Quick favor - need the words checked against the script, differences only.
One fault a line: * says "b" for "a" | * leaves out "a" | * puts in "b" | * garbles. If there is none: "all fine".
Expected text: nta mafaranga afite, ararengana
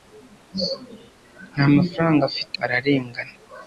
all fine